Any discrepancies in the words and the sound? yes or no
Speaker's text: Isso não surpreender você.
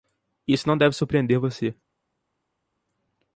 yes